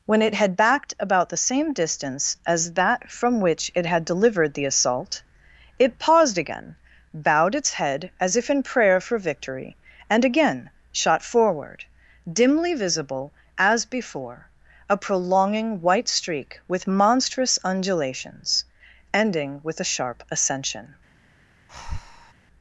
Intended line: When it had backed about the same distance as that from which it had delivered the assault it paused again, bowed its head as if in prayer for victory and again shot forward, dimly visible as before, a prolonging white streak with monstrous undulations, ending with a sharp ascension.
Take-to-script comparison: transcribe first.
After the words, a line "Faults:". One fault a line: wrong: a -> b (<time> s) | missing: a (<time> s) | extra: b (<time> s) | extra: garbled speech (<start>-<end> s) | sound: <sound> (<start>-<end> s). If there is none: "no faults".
When it had backed about the same distance as that from which it had delivered the assault it paused again, bowed its head as if in prayer for victory and again shot forward, dimly visible as before, a prolonging white streak with monstrous undulations, ending with a sharp ascension.
Faults:
sound: breath (21.7-22.3 s)